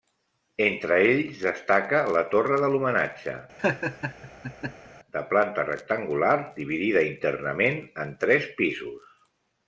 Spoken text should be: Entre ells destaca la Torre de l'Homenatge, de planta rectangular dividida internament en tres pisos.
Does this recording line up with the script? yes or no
yes